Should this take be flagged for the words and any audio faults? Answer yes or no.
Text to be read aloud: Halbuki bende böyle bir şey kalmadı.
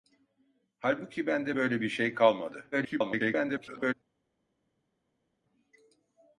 yes